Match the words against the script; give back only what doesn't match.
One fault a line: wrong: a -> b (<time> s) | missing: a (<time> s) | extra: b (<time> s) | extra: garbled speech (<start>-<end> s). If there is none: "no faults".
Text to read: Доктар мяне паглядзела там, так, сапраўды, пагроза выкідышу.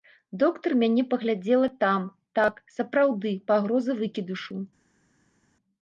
no faults